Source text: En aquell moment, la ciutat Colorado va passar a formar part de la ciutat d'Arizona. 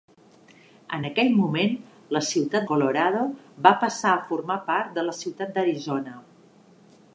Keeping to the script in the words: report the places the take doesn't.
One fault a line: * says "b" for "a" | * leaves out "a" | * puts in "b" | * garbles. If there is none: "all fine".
all fine